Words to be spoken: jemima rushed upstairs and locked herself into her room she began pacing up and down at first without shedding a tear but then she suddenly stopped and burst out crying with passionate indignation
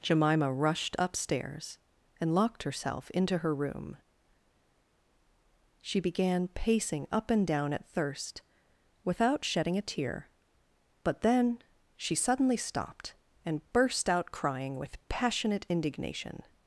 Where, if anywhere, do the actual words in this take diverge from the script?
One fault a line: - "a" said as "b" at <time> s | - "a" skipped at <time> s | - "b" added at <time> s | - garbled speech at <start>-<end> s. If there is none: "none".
- "first" said as "thirst" at 7.9 s